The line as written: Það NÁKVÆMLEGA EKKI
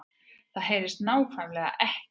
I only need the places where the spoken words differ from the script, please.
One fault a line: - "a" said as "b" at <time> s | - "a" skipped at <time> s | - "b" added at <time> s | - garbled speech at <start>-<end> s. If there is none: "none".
- "HEYRIST" added at 0.7 s